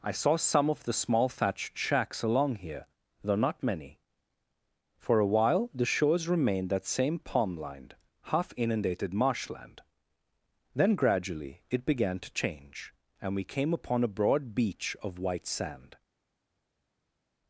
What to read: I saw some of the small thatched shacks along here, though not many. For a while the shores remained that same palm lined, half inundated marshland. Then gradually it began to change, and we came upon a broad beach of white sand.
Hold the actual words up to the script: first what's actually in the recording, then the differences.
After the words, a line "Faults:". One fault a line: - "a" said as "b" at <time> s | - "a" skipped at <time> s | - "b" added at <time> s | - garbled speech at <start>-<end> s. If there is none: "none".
I saw some of the small thatched shacks along here, though not many. For a while the shores remained that same palm lined, half inundated marshland. Then gradually it began to change, and we came upon a broad beach of white sand.
Faults:
none